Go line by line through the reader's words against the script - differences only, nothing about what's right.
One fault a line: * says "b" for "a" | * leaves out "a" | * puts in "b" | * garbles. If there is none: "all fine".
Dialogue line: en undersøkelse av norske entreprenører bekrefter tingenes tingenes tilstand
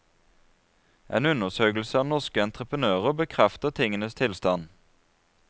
* leaves out "tingenes"